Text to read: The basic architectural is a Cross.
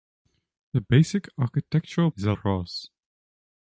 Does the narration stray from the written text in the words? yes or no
no